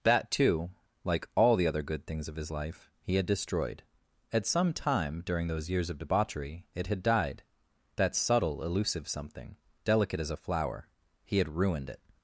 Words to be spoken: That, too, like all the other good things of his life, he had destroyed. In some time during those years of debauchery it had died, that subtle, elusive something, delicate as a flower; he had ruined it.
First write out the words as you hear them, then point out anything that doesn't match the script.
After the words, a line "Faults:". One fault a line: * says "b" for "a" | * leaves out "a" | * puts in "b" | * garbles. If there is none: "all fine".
That, too, like all the other good things of his life, he had destroyed. At some time during those years of debauchery it had died, that subtle, elusive something, delicate as a flower; he had ruined it.
Faults:
* says "At" for "In"